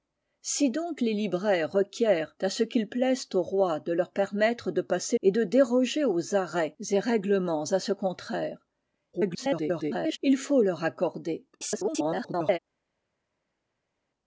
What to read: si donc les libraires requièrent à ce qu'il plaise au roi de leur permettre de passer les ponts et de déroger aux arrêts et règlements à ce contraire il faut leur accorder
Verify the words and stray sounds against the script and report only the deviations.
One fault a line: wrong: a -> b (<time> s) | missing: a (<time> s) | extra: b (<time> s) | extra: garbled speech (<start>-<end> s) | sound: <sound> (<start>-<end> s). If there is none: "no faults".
missing: les ponts (5.2 s)
extra: garbled speech (9.1-10.2 s)
extra: garbled speech (11.5-12.6 s)